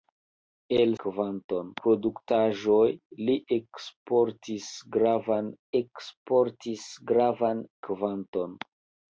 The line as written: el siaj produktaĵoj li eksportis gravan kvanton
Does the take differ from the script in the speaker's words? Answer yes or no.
yes